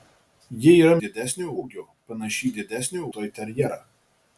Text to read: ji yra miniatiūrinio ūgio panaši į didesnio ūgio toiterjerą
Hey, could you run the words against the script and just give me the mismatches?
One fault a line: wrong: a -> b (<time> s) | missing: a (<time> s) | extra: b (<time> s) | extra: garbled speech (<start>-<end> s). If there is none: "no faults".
wrong: miniatiūrinio -> didesnio (1.0 s)
missing: ūgio (3.1 s)